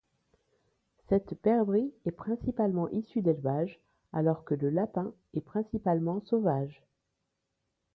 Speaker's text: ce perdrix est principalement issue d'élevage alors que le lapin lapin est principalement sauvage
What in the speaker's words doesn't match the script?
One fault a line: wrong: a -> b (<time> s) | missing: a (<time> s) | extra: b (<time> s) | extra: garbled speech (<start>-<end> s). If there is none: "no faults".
wrong: ce -> cette (1.1 s)
missing: lapin (5.1 s)